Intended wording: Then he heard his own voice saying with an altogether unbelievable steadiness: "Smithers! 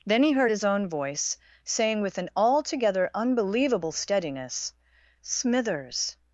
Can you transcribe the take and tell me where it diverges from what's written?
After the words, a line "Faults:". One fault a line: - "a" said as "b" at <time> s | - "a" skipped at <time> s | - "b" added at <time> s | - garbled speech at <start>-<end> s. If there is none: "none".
Then he heard his own voice saying with an altogether unbelievable steadiness: "Smithers!
Faults:
none